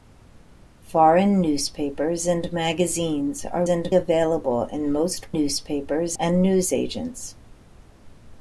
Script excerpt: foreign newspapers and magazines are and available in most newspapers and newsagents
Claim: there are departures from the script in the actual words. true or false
false